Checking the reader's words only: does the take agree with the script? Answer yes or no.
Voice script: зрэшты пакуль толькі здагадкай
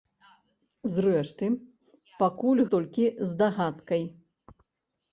yes